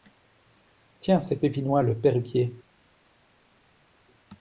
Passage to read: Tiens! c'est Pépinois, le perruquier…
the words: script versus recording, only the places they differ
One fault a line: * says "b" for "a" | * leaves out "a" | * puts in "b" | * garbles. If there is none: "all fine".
all fine